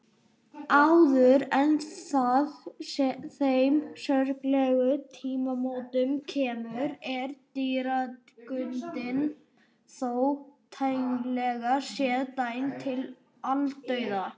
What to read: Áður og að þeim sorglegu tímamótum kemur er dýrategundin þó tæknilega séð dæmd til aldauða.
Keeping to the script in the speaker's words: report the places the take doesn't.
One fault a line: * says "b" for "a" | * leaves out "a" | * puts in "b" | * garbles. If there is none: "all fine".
* says "en" for "og"